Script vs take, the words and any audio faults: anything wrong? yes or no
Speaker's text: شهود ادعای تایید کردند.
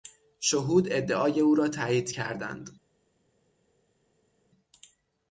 yes